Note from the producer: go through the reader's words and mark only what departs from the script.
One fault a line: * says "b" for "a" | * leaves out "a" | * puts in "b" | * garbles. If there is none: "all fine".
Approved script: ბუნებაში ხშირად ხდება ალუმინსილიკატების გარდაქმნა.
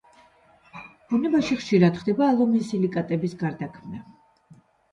all fine